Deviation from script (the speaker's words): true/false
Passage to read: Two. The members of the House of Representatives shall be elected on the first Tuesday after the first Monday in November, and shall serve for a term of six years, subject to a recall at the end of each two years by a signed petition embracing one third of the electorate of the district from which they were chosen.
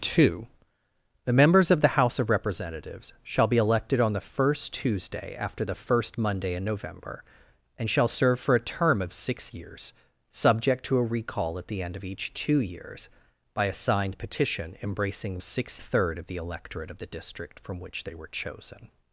true